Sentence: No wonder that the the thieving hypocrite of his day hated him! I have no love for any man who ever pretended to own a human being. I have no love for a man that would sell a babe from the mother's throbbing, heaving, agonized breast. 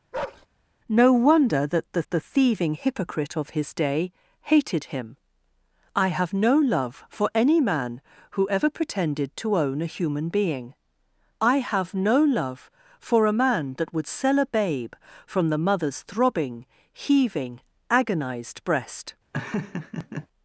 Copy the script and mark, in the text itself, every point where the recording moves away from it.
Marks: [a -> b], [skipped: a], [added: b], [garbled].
No wonder that the the thieving hypocrite of his day hated him! I have no love for any man who ever pretended to own a human being. I have no love for a man that would sell a babe from the mother's throbbing, heaving, agonized breast.